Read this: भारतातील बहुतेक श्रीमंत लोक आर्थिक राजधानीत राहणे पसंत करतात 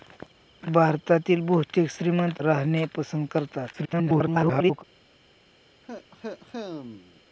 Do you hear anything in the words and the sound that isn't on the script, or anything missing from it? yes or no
yes